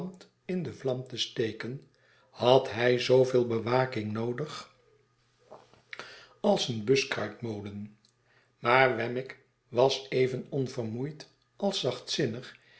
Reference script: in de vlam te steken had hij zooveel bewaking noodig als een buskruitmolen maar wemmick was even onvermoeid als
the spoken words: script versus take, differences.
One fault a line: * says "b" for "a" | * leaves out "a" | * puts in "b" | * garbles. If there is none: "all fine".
all fine